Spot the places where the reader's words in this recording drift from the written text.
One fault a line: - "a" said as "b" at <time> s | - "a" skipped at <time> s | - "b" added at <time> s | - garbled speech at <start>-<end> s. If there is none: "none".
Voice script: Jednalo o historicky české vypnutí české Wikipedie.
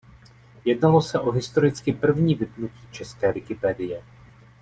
- "se" added at 1.0 s
- "české" said as "první" at 1.9 s